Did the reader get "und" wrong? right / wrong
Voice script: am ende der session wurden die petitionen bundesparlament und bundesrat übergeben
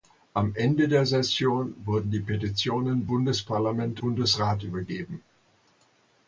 wrong